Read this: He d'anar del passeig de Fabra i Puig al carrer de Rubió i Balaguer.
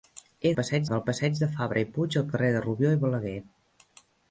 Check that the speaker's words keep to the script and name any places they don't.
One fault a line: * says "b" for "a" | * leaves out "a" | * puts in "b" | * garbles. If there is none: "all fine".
* says "passeig" for "d'anar"